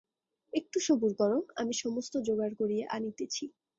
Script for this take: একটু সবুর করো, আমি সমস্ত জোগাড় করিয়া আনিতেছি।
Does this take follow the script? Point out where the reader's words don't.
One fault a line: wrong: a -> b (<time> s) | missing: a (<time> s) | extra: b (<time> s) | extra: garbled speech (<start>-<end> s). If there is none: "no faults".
no faults